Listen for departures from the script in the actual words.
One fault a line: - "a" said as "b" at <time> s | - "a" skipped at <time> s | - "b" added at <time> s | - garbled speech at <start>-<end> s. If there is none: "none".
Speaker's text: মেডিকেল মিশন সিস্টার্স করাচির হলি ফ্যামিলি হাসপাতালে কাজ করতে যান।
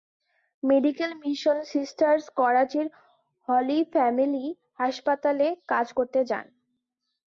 none